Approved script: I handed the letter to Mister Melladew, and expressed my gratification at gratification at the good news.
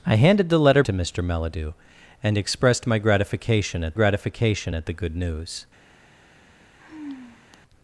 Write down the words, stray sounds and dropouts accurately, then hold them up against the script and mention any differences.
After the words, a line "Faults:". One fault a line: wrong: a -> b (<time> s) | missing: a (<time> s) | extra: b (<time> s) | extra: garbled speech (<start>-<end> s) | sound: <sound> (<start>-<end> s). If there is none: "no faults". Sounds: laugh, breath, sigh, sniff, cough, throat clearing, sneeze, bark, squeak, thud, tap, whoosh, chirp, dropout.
I handed the letter to Mister Melladew, and expressed my gratification at gratification at the good news.
Faults:
sound: sigh (6.8-7.6 s)